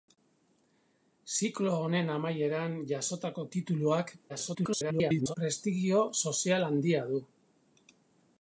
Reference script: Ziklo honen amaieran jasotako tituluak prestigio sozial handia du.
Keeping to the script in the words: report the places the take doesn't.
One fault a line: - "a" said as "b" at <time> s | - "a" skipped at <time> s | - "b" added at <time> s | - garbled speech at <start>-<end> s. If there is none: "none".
- garbled speech at 4.3-5.3 s